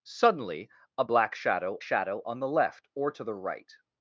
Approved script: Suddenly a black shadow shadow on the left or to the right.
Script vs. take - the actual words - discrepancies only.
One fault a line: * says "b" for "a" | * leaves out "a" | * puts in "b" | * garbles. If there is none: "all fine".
all fine